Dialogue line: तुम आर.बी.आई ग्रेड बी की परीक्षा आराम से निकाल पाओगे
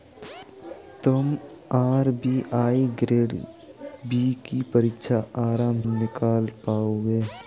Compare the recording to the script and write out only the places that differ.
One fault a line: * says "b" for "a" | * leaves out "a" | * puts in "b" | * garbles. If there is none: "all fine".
* leaves out "से"